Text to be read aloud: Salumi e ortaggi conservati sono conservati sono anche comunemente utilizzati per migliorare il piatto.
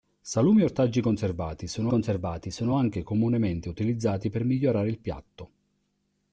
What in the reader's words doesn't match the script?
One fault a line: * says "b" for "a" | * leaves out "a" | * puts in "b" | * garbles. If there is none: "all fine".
all fine